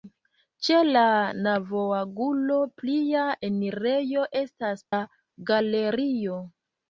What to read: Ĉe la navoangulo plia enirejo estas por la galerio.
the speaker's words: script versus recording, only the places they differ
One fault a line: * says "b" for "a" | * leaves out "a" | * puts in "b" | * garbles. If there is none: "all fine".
* leaves out "por"